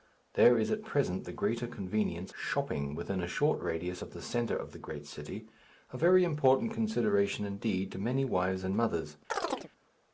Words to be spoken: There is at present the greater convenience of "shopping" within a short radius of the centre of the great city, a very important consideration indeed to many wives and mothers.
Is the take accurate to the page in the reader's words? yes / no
no